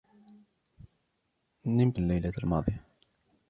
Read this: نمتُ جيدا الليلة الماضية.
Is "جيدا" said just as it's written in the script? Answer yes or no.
no